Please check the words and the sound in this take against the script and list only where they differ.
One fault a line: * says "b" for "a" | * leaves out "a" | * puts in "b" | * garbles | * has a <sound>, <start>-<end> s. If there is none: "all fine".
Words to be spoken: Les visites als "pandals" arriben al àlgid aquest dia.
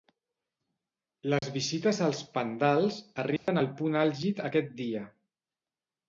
* has a dropout, 1.4-1.4 s
* has a dropout, 3.4-3.5 s
* puts in "punt"